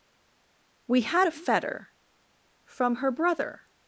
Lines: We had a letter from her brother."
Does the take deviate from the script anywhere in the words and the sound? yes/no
yes